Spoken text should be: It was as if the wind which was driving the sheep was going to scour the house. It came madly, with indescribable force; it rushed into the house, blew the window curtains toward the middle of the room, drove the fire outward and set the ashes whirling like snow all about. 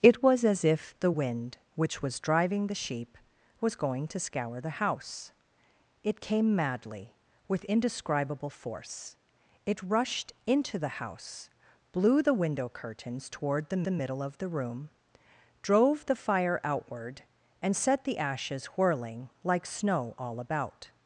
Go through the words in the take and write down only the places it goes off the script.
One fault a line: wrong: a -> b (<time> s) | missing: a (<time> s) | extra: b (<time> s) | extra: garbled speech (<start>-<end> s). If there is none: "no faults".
extra: the (13.8 s)